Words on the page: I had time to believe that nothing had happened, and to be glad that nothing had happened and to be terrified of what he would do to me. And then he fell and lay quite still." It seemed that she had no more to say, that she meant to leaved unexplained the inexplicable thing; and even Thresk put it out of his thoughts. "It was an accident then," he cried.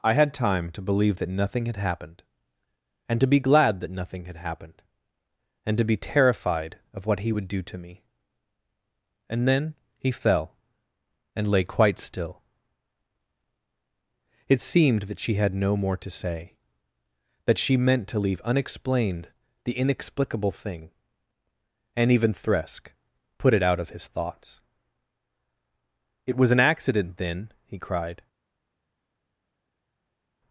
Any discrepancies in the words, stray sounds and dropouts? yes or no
yes